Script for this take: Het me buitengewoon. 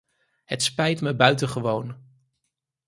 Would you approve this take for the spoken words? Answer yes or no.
no